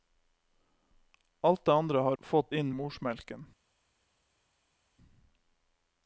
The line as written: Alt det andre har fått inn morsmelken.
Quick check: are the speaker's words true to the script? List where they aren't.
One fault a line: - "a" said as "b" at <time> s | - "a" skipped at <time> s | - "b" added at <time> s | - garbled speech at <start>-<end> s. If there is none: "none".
none